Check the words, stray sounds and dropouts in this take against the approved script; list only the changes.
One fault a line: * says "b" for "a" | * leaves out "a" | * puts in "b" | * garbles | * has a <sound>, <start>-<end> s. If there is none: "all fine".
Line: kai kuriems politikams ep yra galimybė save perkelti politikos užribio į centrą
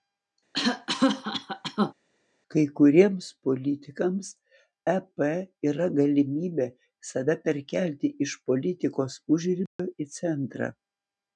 * has a cough, 0.5-1.9 s
* puts in "iš"
* has a dropout, 9.7-9.8 s